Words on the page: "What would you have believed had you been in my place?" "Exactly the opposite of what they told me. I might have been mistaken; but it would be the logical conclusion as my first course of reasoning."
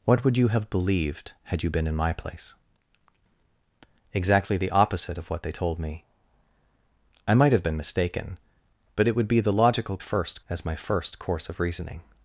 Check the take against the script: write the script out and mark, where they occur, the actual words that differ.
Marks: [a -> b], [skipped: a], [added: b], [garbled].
"What would you have believed had you been in my place?" "Exactly the opposite of what they told me. I might have been mistaken; but it would be the logical [conclusion -> first] as my first course of reasoning."